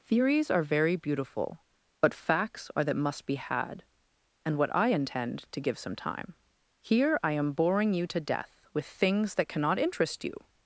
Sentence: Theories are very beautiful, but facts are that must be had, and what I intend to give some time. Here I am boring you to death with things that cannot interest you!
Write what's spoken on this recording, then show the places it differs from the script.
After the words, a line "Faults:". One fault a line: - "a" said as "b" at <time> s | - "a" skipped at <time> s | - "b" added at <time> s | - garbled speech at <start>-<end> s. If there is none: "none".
Theories are very beautiful, but facts are that must be had, and what I intend to give some time. Here I am boring you to death with things that cannot interest you!
Faults:
none